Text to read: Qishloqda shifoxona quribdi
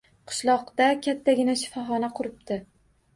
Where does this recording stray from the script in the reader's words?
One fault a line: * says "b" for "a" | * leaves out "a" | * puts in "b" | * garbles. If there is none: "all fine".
* puts in "kattagina"